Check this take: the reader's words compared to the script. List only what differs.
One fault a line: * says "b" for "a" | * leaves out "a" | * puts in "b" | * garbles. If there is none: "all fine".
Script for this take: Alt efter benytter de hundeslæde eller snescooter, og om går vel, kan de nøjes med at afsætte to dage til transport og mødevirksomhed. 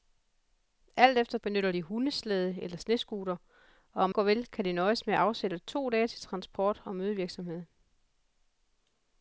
all fine